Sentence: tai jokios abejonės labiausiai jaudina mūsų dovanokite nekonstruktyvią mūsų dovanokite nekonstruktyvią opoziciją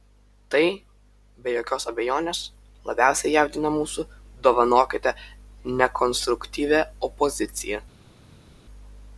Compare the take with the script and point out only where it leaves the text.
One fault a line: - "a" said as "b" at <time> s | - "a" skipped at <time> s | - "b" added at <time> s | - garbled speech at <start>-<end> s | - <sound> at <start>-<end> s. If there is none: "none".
- "be" added at 1.4 s
- "mūsų dovanokite nekonstruktyvią" skipped at 6.8 s